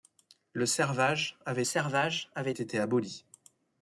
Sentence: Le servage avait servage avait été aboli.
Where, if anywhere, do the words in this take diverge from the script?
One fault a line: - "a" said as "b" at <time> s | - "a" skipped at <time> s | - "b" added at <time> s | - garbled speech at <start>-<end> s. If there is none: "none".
none